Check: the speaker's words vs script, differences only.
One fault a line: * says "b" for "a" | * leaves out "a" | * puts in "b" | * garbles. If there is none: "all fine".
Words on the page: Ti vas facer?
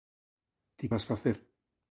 all fine